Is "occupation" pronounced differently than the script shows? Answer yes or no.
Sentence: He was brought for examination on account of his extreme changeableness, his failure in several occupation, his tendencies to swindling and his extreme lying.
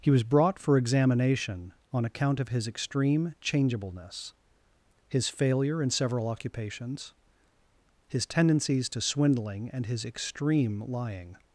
yes